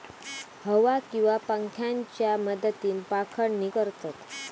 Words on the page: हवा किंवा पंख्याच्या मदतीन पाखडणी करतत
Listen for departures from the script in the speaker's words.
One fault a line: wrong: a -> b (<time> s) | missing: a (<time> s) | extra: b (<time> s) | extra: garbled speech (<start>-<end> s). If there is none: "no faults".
no faults